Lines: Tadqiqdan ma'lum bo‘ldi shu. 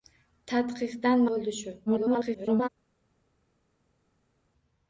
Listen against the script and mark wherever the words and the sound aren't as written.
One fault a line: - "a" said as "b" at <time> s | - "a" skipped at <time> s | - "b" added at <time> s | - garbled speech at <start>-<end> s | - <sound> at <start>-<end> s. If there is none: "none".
- "ma'lum" skipped at 1.2 s
- garbled speech at 1.9-2.7 s